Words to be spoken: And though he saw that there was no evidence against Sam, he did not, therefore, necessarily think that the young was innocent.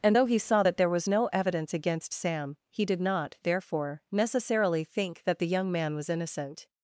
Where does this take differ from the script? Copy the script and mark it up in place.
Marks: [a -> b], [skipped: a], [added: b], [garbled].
And though he saw that there was no evidence against Sam, he did not, therefore, necessarily think that the young [added: man] was innocent.